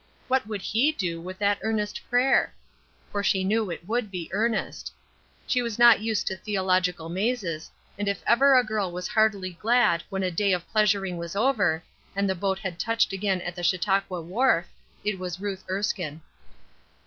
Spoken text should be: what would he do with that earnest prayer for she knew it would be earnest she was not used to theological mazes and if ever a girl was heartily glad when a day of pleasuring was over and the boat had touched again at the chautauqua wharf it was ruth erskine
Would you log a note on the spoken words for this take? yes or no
no